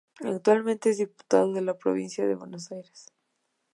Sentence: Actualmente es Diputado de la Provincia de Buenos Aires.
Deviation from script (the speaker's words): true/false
false